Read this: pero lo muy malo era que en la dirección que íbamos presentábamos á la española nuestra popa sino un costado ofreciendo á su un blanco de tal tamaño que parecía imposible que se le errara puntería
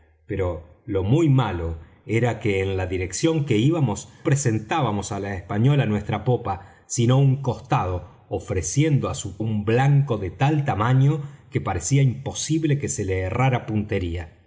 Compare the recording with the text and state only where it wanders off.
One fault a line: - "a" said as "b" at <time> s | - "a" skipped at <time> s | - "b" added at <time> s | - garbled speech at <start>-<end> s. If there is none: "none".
none